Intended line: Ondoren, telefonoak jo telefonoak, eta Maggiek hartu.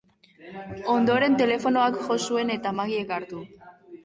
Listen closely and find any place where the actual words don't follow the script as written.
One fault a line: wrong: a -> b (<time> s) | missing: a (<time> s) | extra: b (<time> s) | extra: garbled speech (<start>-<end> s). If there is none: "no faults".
wrong: telefonoak -> zuen (2.3 s)